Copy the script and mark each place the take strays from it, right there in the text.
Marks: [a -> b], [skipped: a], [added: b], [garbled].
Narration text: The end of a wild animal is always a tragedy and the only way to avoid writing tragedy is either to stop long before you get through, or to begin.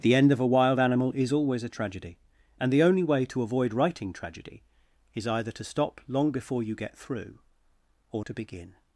The end of a wild animal is always a tragedy and the only way to avoid writing tragedy is either to stop long before you get through, or to begin.